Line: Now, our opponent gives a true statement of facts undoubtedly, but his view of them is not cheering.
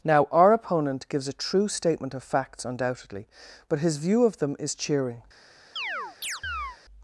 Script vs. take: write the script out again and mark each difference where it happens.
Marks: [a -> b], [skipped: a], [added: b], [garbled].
Now, our opponent gives a true statement of facts undoubtedly, but his view of them is [skipped: not] cheering.